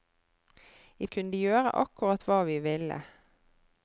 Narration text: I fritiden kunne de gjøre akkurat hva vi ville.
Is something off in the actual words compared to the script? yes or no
yes